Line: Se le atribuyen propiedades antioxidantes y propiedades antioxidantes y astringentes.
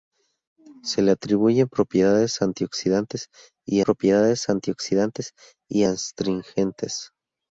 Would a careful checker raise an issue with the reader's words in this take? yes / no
no